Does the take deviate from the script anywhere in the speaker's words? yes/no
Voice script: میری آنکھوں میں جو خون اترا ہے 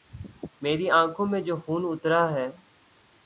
no